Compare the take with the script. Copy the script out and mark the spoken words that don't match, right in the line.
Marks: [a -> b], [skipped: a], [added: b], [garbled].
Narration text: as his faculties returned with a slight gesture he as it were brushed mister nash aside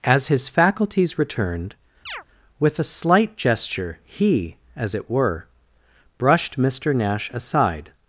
as his faculties returned with a slight gesture he as it were brushed mister nash aside